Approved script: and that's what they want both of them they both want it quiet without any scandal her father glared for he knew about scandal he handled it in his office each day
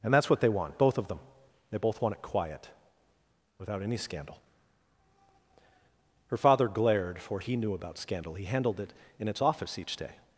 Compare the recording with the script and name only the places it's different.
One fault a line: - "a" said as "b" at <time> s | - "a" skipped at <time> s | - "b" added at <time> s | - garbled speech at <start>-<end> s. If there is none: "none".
- "his" said as "its" at 9.3 s